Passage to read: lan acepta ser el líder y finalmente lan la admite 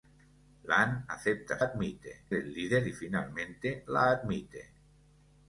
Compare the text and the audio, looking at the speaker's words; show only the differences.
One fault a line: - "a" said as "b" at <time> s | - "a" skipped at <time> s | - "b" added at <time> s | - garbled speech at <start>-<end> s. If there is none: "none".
- "ser" said as "admite" at 1.6 s
- "lan" skipped at 3.9 s